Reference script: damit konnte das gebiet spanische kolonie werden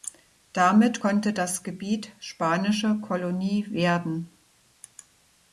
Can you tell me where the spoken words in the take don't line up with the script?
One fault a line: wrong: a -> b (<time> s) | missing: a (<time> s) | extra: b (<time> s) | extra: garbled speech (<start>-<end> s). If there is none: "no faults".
no faults